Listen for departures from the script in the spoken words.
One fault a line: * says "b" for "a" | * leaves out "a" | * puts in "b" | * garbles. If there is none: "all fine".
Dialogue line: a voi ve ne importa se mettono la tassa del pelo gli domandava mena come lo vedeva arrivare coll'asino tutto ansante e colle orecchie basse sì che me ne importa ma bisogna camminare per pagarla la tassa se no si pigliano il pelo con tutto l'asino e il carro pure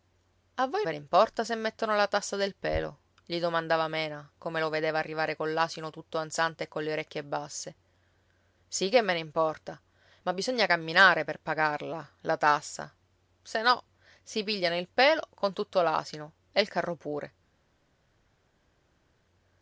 all fine